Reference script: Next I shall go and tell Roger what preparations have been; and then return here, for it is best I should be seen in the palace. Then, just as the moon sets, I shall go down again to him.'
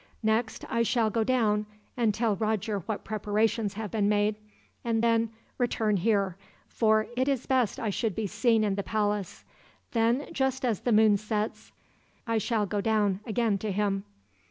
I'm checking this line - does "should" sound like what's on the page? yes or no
yes